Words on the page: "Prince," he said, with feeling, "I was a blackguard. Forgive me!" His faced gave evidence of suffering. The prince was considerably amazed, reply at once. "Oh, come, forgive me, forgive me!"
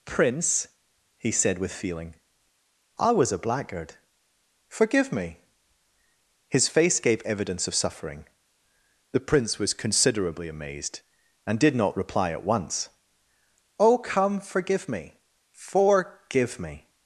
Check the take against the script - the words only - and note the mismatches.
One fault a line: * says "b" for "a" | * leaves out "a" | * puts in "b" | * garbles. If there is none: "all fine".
* says "face" for "faced"
* puts in "and did not"